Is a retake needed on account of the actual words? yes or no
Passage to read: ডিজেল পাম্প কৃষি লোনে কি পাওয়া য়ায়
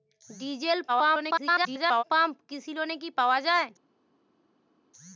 yes